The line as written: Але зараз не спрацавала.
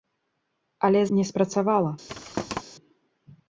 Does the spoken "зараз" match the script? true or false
false